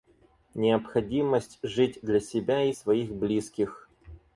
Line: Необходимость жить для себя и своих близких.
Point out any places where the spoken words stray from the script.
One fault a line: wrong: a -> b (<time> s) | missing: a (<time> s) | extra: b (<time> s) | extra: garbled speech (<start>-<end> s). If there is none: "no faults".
no faults